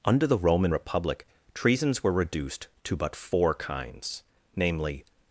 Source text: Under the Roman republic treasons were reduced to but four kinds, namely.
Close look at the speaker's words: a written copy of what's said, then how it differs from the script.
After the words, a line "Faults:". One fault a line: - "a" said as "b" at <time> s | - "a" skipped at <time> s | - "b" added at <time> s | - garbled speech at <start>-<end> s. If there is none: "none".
Under the Roman republic treasons were reduced to but four kinds, namely.
Faults:
none